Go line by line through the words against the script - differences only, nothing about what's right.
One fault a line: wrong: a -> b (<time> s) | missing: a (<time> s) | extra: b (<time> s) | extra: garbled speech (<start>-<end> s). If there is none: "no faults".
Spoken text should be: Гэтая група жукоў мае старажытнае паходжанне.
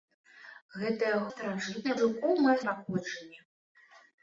wrong: група -> старажытнае (1.3 s)
missing: старажытнае (2.5 s)